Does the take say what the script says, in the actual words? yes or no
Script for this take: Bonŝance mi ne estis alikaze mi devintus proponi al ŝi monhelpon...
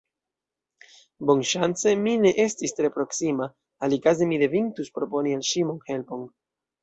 no